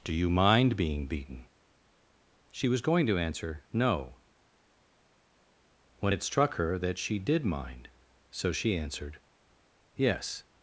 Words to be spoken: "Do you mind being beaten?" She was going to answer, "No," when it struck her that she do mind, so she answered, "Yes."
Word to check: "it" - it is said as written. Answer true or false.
true